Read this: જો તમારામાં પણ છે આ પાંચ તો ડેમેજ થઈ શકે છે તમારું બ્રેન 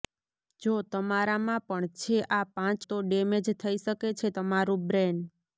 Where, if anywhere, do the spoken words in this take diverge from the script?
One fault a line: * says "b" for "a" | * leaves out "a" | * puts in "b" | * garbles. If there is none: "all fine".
all fine